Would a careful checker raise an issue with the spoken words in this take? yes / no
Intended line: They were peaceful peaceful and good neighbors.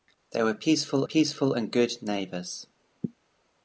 no